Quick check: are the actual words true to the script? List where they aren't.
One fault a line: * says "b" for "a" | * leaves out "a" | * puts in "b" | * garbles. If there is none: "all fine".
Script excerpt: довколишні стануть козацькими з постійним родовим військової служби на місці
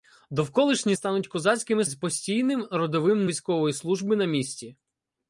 all fine